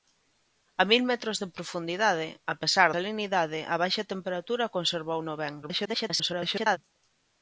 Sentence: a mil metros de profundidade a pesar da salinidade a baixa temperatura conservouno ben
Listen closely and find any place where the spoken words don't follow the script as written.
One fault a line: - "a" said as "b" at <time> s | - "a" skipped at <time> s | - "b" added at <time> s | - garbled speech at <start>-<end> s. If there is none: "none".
- "da" skipped at 2.9 s
- garbled speech at 5.6-6.8 s